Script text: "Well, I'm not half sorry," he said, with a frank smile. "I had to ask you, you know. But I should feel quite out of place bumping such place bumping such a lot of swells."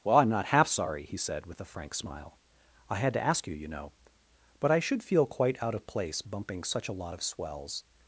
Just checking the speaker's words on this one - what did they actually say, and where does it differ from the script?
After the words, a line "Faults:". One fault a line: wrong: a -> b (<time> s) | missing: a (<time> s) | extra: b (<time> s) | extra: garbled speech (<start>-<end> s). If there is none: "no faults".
"Well, I'm not half sorry," he said, with a frank smile. "I had to ask you, you know. But I should feel quite out of place bumping such a lot of swells."
Faults:
missing: place bumping such (6.9 s)